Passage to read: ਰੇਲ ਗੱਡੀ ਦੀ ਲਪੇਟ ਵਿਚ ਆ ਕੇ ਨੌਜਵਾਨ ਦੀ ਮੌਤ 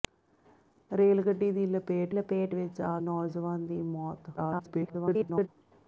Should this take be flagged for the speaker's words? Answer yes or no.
yes